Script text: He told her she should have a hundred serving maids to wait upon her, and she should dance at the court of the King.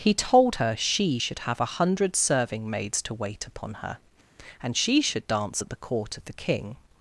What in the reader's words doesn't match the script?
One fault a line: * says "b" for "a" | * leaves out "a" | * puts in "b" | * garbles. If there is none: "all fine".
all fine